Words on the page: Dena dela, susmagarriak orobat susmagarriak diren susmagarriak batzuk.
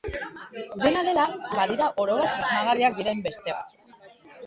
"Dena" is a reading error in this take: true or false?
false